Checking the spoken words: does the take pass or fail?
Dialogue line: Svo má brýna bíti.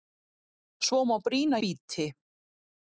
pass